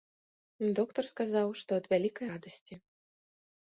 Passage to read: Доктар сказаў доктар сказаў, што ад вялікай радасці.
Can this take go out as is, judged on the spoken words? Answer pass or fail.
fail